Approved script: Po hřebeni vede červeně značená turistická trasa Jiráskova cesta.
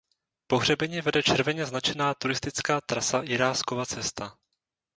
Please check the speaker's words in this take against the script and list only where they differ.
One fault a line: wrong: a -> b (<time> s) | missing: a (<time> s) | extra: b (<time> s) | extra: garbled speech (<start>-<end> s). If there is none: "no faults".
no faults